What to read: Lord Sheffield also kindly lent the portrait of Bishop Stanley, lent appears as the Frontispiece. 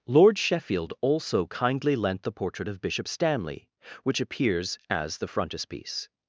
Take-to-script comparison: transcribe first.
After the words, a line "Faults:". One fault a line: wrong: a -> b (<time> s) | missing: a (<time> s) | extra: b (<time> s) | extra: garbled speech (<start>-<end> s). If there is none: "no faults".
Lord Sheffield also kindly lent the portrait of Bishop Stanley, which appears as the Frontispiece.
Faults:
wrong: lent -> which (4.0 s)